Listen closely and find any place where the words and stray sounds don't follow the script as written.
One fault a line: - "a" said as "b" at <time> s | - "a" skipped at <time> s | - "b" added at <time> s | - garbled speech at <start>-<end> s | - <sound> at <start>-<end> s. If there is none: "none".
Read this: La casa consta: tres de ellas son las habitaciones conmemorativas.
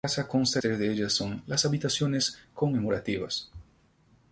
none